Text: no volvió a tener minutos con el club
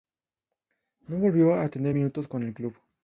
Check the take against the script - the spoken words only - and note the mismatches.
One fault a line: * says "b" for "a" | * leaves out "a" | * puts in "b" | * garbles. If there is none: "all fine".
all fine